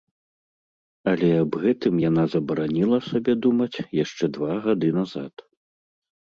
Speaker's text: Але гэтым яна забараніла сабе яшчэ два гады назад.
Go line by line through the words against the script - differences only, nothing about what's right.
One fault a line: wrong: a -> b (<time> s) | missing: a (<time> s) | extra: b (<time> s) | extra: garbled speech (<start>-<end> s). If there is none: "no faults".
extra: аб (1.4 s)
extra: думаць (3.5 s)